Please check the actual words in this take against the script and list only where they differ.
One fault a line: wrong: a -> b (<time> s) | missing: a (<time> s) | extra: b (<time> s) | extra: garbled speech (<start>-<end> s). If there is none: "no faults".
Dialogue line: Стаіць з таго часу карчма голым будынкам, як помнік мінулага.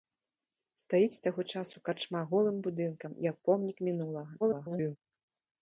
extra: garbled speech (4.4-5.0 s)